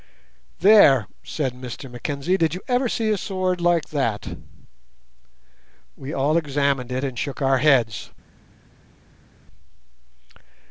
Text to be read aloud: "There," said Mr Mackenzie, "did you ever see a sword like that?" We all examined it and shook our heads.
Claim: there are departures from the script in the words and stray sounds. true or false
false